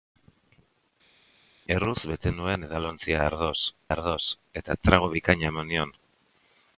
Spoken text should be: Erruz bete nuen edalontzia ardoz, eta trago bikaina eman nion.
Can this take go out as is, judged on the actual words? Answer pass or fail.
fail